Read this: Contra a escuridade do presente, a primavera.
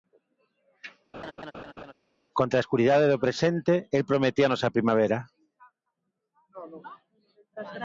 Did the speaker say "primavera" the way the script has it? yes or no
yes